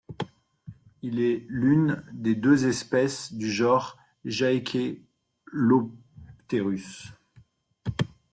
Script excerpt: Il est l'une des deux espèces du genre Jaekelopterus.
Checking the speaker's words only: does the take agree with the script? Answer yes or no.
yes